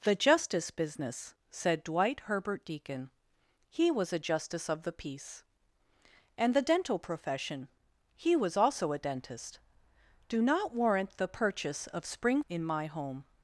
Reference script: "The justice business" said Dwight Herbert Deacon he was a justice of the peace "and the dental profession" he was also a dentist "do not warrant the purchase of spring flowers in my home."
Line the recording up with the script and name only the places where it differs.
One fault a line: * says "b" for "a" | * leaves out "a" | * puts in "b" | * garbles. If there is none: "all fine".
* leaves out "flowers"